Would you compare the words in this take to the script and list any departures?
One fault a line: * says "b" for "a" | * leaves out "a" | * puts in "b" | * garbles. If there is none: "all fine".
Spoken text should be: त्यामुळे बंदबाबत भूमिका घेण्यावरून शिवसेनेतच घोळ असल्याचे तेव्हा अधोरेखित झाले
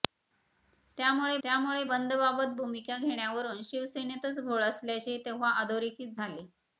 * puts in "त्यामुळे"